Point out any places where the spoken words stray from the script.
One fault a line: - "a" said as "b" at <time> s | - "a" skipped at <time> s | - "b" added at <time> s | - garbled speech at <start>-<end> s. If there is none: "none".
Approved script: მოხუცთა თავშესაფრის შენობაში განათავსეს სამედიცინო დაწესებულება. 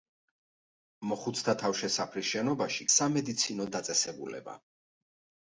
- "განათავსეს" skipped at 2.9 s